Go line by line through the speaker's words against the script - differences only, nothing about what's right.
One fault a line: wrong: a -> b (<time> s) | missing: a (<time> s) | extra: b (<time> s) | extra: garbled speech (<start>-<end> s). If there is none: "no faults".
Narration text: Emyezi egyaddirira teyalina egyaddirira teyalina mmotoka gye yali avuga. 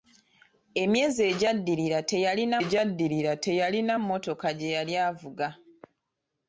no faults